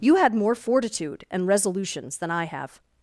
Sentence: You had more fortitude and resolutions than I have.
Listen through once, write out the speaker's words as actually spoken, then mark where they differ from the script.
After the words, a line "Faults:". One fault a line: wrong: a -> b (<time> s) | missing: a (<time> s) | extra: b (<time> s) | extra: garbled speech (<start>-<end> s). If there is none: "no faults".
You had more fortitude and resolutions than I have.
Faults:
no faults